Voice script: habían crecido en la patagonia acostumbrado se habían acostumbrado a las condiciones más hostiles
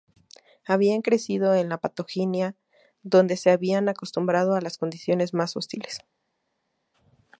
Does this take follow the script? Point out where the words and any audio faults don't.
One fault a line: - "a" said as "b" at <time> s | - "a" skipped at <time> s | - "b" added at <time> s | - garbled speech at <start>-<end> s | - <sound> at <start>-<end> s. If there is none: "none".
- "acostumbrado" said as "donde" at 3.0 s